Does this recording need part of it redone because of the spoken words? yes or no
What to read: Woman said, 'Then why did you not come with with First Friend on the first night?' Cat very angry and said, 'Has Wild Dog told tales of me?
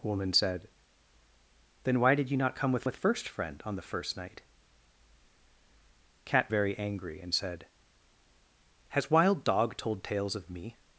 no